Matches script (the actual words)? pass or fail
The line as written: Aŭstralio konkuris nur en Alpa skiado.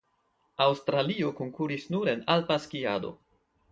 pass